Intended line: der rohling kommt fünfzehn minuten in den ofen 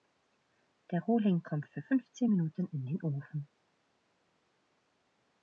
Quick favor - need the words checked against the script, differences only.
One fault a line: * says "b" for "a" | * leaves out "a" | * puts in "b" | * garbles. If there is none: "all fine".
* puts in "für"